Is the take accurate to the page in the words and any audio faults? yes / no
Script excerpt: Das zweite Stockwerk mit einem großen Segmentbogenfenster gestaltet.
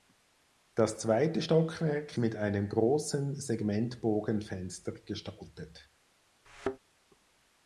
no